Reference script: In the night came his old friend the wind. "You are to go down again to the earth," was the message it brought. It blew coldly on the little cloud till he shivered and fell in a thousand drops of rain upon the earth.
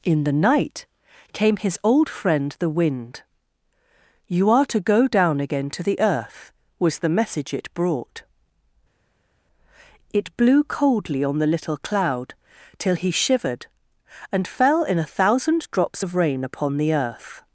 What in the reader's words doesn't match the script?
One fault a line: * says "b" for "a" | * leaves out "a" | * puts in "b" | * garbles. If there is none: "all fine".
all fine